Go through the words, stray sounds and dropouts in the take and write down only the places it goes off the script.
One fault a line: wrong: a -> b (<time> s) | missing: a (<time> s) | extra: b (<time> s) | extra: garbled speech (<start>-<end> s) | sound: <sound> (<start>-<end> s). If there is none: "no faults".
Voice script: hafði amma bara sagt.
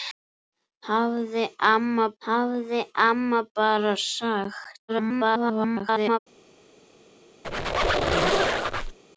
extra: hafði amma (2.3 s)
extra: garbled speech (4.9-6.2 s)
sound: squeak (7.4-9.0 s)